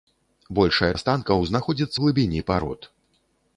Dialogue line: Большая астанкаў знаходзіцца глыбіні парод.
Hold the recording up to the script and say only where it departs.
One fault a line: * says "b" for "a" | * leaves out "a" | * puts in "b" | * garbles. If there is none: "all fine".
all fine